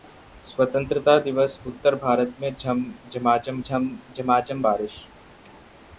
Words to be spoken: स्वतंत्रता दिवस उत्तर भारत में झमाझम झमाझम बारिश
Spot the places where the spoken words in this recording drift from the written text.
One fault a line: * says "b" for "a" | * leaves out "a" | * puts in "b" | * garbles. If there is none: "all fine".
all fine